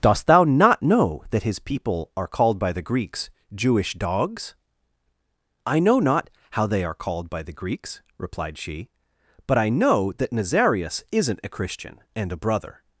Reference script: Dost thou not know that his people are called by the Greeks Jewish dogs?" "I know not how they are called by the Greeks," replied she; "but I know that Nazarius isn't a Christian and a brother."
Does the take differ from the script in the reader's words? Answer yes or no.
no